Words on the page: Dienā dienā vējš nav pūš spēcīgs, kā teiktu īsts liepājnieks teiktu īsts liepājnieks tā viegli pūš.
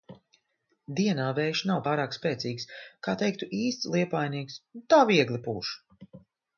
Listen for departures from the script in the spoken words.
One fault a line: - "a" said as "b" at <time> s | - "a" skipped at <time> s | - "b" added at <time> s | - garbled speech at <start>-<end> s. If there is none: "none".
- "dienā" skipped at 1.3 s
- "pūš" said as "pārāk" at 1.8 s
- "teiktu īsts liepājnieks" skipped at 4.6 s